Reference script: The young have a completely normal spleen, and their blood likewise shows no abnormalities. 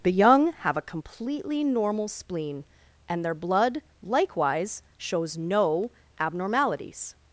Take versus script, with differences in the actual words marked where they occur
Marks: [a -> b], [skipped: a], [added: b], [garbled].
The young have a completely normal spleen, and their blood likewise shows no abnormalities.